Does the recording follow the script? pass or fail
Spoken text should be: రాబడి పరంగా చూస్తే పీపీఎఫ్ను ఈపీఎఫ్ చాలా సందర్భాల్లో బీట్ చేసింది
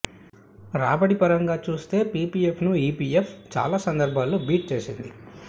pass